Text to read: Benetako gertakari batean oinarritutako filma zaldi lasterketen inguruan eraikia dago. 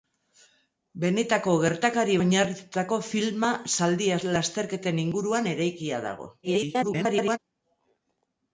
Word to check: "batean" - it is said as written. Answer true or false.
false